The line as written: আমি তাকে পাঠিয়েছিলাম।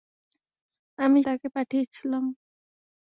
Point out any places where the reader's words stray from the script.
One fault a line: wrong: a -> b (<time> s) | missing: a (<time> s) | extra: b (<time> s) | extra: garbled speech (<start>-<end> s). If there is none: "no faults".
no faults